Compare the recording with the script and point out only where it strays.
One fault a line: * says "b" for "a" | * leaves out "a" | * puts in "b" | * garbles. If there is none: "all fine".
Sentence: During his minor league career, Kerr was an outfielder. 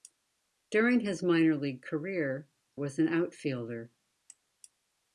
* leaves out "Kerr"